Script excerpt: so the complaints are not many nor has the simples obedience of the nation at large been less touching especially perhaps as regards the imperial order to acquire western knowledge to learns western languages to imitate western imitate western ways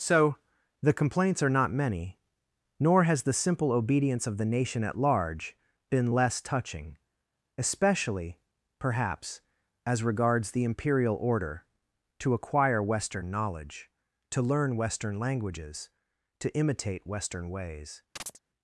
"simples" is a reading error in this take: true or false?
true